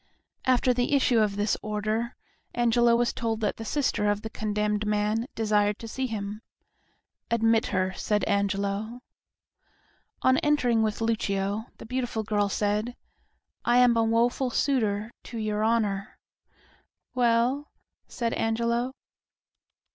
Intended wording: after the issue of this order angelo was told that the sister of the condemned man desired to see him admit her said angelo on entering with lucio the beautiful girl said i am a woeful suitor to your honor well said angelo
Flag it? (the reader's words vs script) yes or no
no